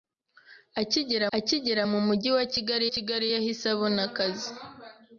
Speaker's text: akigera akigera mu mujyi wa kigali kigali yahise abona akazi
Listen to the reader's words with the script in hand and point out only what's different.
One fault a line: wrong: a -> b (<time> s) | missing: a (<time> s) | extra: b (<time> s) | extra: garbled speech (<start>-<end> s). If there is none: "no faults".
no faults